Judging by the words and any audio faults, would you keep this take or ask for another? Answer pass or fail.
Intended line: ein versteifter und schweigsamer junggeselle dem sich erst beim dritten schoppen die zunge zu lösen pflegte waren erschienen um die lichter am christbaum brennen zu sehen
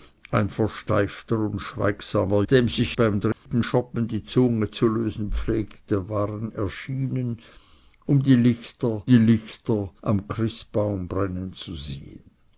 fail